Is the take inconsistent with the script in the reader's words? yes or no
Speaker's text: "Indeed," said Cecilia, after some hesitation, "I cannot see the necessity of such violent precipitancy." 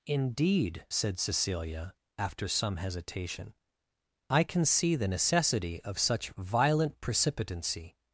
yes